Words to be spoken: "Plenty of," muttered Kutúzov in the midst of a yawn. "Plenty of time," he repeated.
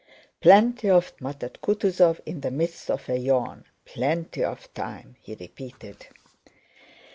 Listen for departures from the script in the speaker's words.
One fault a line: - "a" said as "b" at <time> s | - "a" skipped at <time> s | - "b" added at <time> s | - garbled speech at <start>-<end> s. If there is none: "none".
none